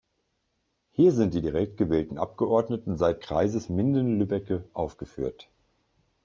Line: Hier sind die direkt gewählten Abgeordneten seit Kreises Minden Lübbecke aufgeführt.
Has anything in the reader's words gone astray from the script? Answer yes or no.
no